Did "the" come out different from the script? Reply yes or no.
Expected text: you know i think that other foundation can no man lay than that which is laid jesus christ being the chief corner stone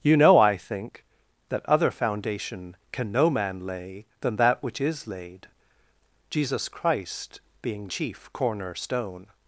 yes